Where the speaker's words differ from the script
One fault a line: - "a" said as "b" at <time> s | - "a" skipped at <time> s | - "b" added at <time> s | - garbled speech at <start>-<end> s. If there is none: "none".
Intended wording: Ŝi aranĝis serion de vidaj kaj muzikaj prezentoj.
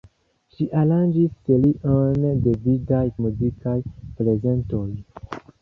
- "kaj" skipped at 3.0 s